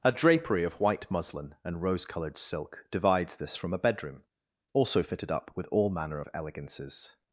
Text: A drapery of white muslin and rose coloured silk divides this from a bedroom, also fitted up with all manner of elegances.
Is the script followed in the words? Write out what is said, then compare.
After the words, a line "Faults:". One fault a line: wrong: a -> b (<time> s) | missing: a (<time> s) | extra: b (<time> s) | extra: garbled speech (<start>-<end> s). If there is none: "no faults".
A drapery of white muslin and rose coloured silk divides this from a bedroom, also fitted up with all manner of elegances.
Faults:
no faults